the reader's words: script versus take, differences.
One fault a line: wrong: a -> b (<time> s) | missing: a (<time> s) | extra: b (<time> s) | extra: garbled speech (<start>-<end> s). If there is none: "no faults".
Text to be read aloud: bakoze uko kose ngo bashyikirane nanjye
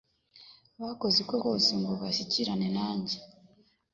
no faults